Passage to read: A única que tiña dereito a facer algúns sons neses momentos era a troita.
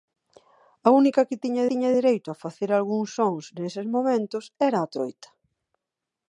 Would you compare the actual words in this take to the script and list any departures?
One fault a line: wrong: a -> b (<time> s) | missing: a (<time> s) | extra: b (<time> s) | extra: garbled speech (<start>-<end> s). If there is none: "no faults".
extra: tiña (1.7 s)